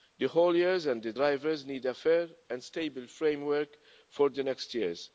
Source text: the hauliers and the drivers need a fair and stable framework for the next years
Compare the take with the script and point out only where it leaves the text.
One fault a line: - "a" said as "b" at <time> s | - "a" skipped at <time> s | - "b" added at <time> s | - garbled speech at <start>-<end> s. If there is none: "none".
none